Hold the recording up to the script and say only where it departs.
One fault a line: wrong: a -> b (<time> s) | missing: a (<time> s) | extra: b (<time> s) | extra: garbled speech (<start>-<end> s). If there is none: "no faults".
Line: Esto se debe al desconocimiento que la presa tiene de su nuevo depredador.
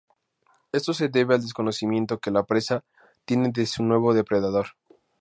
no faults